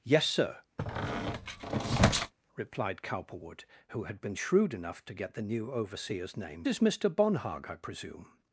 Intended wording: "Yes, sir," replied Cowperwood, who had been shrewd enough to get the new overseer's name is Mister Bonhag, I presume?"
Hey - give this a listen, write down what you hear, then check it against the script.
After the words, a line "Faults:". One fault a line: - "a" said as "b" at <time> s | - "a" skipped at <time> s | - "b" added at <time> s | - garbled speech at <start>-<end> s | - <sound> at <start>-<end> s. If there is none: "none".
"Yes, sir," replied Cowperwood, who had been shrewd enough to get the new overseer's name is Mister Bonhag, I presume?"
Faults:
- squeak at 0.8-2.3 s